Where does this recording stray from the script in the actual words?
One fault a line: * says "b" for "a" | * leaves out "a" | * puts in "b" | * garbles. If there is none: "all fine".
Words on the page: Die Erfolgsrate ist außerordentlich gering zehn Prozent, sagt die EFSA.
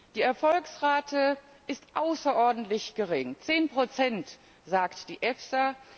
all fine